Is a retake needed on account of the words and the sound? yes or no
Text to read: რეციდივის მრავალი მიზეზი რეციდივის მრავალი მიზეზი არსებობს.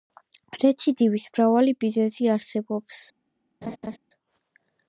yes